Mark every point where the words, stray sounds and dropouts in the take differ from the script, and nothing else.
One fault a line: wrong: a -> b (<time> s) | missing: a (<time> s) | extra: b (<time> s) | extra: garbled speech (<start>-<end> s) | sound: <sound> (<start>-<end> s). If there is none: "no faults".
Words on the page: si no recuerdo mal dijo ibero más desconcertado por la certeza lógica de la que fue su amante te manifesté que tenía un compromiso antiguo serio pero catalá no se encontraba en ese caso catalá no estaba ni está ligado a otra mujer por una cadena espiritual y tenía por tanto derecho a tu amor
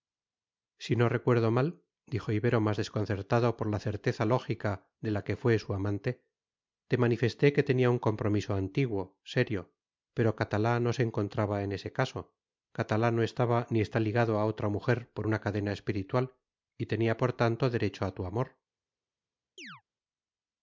sound: chirp (19.6-19.8 s)